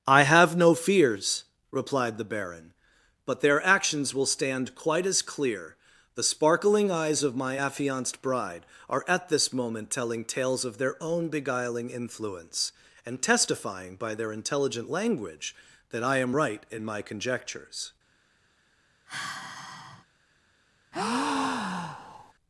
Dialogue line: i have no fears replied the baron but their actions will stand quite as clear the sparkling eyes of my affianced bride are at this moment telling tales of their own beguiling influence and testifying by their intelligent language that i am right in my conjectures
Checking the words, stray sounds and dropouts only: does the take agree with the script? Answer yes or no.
no